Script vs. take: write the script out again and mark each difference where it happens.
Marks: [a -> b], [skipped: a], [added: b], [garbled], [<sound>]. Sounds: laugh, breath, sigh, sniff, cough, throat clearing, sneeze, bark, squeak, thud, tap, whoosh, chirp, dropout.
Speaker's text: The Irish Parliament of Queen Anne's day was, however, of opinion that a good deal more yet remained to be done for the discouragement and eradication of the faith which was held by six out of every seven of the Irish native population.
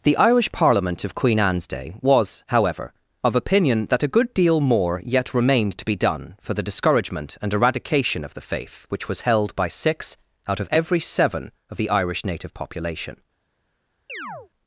The Irish Parliament of Queen Anne's day was, however, of opinion that a good deal more yet remained to be done for the discouragement and eradication of the faith which was held by six out of every seven of the Irish native population. [chirp]